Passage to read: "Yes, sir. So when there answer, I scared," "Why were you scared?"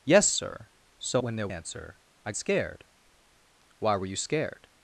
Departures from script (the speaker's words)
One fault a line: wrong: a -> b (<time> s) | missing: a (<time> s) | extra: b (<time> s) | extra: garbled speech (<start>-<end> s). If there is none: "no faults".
no faults